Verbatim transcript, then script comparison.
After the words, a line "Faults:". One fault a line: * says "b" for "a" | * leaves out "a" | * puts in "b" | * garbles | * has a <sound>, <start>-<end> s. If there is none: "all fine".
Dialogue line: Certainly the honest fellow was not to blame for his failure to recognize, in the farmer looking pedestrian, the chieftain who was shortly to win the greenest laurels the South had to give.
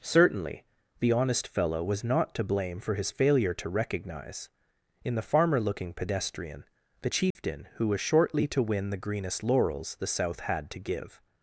Certainly the honest fellow was not to blame for his failure to recognize, in the farmer looking pedestrian, the chieftain who was shortly to win the greenest laurels the South had to give.
Faults:
* has a dropout, 7.3-7.4 s